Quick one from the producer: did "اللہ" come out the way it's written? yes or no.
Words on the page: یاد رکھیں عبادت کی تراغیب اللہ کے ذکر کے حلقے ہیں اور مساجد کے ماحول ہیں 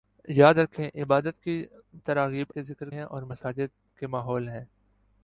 no